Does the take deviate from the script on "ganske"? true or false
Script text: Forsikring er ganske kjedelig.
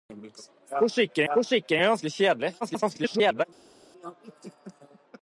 false